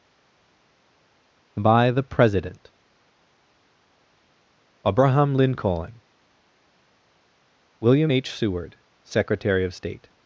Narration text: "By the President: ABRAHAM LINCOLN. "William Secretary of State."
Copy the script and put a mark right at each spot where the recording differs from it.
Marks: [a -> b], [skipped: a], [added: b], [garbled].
"By the President: ABRAHAM LINCOLN. "William [added: H Seward] Secretary of State."